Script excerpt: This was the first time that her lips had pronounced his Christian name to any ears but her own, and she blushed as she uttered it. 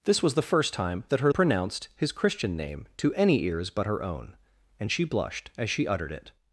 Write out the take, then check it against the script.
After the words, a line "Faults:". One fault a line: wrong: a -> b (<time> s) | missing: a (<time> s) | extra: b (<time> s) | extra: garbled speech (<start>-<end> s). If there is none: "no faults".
This was the first time that her pronounced his Christian name to any ears but her own, and she blushed as she uttered it.
Faults:
missing: lips had (1.3 s)